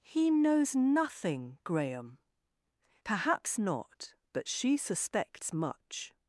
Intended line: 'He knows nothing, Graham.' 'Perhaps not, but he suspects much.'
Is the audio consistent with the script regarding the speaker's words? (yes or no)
no